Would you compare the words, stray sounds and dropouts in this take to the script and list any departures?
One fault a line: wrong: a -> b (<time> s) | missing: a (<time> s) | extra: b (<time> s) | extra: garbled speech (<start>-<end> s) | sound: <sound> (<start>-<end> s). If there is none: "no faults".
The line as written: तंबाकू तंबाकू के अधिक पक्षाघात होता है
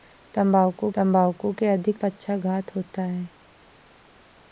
no faults